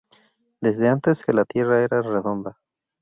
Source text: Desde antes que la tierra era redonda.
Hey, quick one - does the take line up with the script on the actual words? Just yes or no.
yes